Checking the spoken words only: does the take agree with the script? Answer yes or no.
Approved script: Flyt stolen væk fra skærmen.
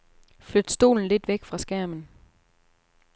no